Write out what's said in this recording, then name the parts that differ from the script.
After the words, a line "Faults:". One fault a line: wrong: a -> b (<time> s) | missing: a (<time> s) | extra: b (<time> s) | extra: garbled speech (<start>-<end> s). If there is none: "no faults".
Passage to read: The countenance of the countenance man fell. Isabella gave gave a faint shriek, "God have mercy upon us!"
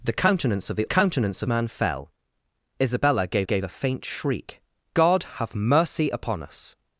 The countenance of the countenance man fell. Isabella gave gave a faint shriek, "God have mercy upon us!"
Faults:
no faults